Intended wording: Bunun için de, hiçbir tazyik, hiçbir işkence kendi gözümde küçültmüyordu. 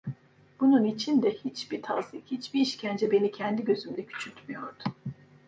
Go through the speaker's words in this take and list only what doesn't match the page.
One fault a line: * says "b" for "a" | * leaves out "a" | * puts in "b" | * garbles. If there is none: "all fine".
* puts in "beni"